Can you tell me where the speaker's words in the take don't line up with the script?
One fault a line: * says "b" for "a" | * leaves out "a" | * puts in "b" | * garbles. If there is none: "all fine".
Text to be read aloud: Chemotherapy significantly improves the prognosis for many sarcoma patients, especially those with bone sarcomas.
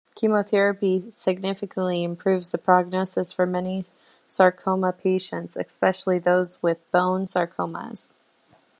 all fine